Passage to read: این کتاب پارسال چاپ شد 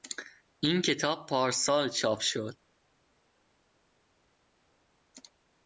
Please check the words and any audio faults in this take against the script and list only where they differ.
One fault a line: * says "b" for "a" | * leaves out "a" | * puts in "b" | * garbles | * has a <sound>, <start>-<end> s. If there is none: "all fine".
all fine